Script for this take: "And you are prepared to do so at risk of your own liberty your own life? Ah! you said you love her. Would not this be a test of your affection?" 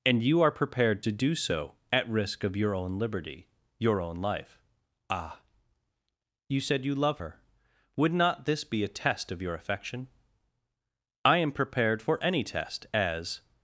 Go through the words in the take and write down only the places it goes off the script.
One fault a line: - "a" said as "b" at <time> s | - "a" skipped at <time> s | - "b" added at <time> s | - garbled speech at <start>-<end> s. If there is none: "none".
- "I am prepared for any test as" added at 11.2 s